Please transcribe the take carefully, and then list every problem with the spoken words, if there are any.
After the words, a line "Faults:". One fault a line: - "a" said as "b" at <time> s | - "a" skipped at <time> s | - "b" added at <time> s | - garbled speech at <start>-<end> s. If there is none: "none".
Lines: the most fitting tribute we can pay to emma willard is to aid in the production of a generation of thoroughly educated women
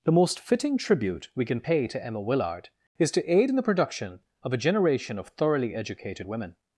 the most fitting tribute we can pay to emma willard is to aid in the production of a generation of thoroughly educated women
Faults:
none